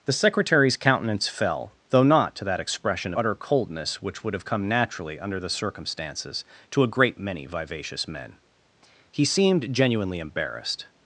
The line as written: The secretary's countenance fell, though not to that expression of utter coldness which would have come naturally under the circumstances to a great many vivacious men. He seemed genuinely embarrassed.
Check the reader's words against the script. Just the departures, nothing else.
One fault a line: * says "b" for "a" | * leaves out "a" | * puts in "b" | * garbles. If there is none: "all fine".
* leaves out "of"